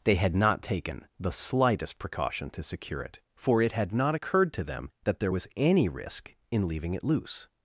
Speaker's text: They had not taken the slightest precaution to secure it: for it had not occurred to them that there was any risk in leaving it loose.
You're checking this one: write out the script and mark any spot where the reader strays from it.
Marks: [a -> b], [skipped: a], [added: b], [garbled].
They had not taken the slightest precaution to secure it: for it had not occurred to them that there was any risk in leaving it loose.